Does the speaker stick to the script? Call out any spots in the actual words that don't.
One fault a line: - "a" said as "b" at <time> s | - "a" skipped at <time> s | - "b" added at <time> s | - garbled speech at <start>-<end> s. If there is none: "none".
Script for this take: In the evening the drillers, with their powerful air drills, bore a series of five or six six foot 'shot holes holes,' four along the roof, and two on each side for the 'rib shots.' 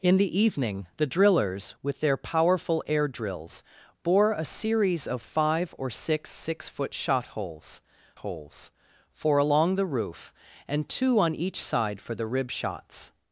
none